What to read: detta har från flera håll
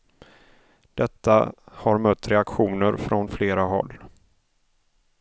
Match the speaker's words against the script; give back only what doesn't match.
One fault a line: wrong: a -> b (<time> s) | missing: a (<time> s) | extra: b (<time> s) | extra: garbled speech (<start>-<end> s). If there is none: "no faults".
extra: mött reaktioner (2.0 s)